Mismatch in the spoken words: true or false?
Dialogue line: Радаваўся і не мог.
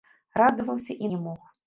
false